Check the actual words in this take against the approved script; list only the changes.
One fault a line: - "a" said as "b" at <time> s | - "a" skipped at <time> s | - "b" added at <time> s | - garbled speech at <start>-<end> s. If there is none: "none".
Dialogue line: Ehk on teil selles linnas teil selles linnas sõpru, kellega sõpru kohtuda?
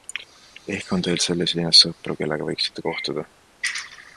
- "teil selles linnas" skipped at 1.8 s
- "sõpru" said as "võiksite" at 2.5 s